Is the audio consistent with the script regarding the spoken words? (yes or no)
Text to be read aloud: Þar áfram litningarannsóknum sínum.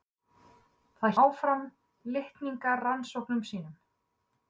yes